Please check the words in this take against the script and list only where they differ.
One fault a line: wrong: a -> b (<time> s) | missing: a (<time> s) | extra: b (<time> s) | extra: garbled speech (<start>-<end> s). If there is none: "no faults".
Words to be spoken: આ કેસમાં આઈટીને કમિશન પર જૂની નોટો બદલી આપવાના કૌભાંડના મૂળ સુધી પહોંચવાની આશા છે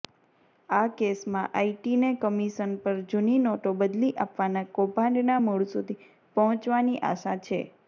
no faults